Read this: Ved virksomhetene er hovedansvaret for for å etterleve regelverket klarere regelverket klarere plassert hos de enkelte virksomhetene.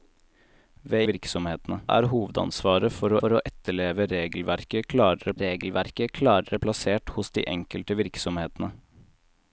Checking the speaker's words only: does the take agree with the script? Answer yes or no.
yes